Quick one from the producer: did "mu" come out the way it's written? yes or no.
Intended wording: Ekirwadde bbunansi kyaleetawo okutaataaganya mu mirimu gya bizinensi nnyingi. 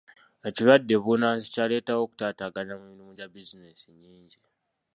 yes